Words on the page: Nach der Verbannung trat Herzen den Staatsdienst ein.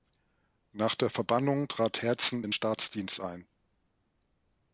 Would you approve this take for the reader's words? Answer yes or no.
yes